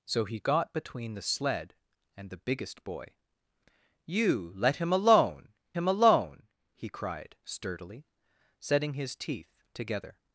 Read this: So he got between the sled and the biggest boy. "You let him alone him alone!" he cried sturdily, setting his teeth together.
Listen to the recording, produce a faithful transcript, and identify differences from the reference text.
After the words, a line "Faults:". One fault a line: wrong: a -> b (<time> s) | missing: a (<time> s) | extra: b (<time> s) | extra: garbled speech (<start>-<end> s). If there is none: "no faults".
So he got between the sled and the biggest boy. "You let him alone him alone!" he cried sturdily, setting his teeth together.
Faults:
no faults